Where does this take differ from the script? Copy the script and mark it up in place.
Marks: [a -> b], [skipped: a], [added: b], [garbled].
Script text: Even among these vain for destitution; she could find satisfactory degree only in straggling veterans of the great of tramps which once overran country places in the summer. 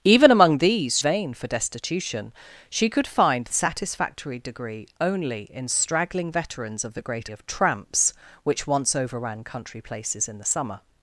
Even among these vain for destitution; she could find satisfactory degree only in straggling veterans of the great of tramps which once overran country places in the summer.